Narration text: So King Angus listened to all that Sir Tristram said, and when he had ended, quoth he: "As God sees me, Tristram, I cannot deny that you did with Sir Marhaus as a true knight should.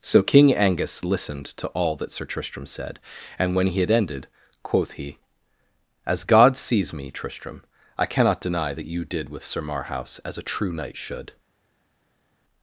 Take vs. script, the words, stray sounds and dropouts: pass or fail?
pass